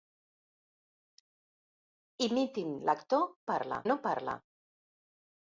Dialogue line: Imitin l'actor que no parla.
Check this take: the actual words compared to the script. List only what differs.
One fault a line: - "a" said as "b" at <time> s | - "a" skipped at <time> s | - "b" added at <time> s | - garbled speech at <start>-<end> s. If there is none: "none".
- "que" said as "parla" at 3.5 s